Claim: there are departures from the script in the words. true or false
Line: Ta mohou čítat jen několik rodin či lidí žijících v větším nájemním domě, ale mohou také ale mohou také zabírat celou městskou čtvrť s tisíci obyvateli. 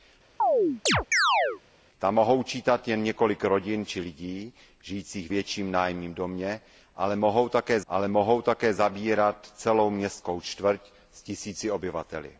false